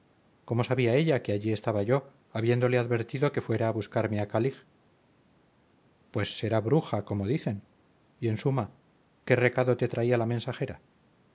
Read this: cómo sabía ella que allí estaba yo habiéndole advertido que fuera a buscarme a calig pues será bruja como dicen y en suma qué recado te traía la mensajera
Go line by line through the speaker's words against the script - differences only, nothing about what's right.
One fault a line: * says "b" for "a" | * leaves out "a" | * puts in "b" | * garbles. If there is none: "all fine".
all fine